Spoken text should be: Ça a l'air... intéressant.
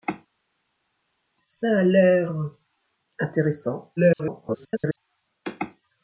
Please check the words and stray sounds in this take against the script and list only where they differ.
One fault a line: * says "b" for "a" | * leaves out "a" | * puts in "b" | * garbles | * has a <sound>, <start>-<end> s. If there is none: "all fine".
* garbles